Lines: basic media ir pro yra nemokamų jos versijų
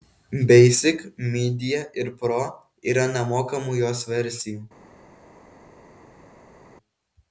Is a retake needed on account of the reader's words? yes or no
no